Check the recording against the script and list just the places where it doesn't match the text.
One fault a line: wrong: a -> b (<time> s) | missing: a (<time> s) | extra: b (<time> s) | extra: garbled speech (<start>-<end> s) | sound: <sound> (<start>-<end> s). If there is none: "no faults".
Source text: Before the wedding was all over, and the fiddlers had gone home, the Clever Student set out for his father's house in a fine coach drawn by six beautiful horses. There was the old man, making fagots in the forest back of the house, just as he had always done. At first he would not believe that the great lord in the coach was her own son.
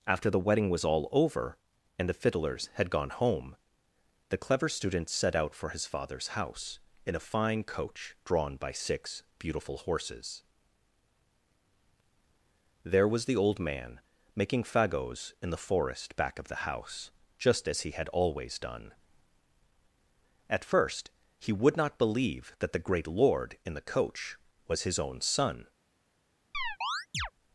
wrong: Before -> After (0.1 s)
wrong: her -> his (24.8 s)
sound: chirp (26.5-27.3 s)